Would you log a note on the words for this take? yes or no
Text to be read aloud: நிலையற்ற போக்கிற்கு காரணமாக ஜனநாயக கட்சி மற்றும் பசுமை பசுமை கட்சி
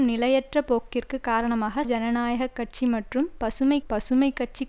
no